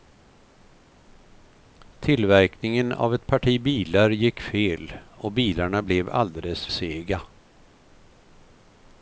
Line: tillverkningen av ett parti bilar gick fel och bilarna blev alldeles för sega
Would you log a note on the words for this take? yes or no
yes